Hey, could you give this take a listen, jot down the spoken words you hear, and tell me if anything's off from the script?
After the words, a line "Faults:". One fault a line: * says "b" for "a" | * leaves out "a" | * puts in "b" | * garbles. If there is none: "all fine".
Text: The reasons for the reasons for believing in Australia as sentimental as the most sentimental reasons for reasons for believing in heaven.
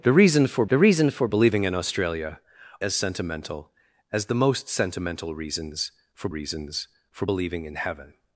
The reasons for the reasons for believing in Australia as sentimental as the most sentimental reasons for reasons for believing in heaven.
Faults:
all fine